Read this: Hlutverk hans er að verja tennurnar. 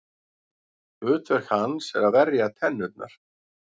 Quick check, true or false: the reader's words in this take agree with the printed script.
true